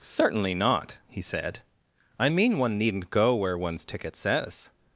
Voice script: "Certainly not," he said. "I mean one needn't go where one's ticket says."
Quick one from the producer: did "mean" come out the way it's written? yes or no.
yes